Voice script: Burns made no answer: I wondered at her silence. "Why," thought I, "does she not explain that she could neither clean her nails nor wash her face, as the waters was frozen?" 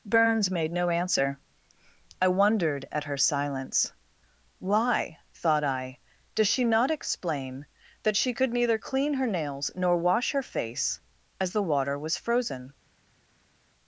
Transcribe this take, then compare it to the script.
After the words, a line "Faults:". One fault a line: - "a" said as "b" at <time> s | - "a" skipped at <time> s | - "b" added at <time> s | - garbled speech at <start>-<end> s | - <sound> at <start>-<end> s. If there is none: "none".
Burns made no answer: I wondered at her silence. "Why," thought I, "does she not explain that she could neither clean her nails nor wash her face, as the water was frozen?"
Faults:
- "waters" said as "water" at 11.6 s